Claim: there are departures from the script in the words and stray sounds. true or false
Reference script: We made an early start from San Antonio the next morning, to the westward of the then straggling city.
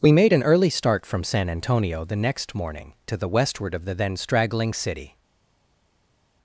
false